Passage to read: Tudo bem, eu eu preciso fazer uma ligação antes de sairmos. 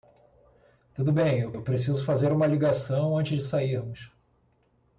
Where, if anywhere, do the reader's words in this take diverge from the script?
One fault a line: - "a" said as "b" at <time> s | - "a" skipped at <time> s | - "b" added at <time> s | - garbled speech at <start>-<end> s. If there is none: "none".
none